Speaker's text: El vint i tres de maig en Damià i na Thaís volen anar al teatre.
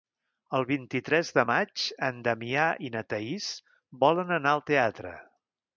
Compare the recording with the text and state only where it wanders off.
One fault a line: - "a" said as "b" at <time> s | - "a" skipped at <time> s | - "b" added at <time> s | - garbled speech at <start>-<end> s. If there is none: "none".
none